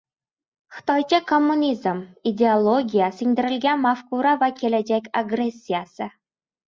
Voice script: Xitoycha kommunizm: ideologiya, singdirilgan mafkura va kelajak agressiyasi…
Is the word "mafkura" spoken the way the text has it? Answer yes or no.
yes